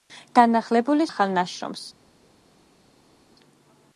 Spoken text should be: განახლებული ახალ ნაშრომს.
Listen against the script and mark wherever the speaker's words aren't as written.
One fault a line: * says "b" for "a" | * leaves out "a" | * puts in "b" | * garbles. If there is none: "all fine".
all fine